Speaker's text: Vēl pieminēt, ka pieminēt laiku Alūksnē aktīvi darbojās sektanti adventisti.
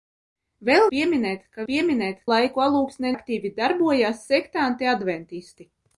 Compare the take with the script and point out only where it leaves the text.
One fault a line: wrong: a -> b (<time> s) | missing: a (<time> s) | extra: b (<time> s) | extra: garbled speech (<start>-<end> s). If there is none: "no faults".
no faults